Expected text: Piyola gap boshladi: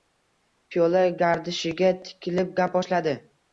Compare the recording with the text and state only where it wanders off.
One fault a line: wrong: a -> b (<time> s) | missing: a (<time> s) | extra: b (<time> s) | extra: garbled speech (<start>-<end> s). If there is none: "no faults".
extra: gardishiga tikilib (1.2 s)